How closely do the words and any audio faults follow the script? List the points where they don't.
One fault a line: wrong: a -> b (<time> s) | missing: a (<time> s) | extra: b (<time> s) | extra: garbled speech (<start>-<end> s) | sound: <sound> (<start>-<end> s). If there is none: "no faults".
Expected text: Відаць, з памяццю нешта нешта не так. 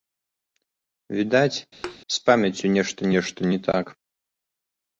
sound: thud (1.8-2.0 s)